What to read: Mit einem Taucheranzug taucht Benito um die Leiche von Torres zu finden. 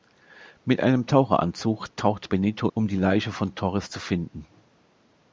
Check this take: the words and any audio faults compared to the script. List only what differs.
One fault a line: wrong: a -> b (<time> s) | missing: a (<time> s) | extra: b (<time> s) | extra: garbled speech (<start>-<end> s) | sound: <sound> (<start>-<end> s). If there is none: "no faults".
no faults